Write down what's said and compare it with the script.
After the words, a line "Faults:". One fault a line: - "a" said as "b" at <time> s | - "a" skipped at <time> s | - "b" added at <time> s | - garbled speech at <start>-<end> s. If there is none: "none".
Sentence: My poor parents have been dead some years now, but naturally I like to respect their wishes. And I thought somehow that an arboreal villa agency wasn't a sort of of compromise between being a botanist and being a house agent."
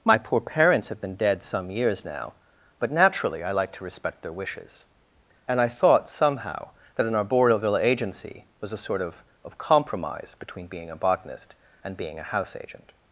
My poor parents have been dead some years now, but naturally I like to respect their wishes. And I thought somehow that an arboreal villa agency was a sort of of compromise between being a botanist and being a house agent."
Faults:
- "wasn't" said as "was" at 8.6 s